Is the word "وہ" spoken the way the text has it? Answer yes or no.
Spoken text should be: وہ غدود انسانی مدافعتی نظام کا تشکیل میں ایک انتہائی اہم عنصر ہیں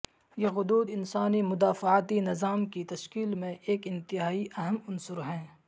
no